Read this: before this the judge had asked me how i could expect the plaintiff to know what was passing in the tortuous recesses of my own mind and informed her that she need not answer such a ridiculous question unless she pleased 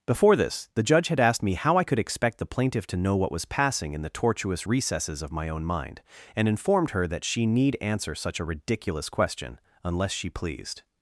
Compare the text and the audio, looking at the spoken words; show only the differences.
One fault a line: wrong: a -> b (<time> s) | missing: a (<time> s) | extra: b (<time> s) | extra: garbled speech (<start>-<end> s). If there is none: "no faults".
missing: not (7.8 s)